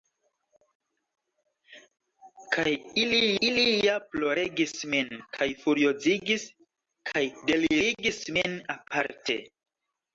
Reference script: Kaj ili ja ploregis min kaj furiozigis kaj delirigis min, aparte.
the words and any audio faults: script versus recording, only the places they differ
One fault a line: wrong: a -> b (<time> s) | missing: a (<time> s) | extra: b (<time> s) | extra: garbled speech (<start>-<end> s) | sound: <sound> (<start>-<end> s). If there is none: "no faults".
extra: ili (3.5 s)